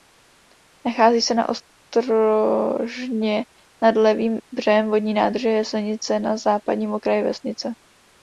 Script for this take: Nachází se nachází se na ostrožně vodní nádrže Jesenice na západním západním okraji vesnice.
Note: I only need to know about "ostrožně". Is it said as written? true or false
false